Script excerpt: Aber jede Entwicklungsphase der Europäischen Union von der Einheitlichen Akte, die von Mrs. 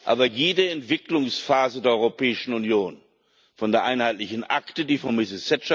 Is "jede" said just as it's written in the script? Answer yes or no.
yes